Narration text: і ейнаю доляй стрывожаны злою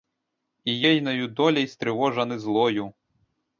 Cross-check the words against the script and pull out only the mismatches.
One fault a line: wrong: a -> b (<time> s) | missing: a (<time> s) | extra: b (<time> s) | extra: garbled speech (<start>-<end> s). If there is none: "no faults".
no faults